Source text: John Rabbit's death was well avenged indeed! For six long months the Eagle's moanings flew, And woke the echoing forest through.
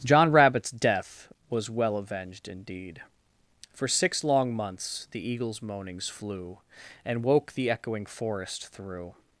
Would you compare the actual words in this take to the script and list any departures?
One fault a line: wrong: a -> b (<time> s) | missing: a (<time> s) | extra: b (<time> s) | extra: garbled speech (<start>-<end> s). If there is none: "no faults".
no faults